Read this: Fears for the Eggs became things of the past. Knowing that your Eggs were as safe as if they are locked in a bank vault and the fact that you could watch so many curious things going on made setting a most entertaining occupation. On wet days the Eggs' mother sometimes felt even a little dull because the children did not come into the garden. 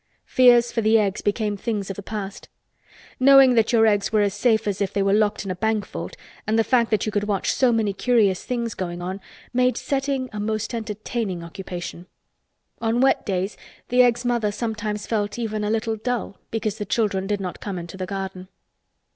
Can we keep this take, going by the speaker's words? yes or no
no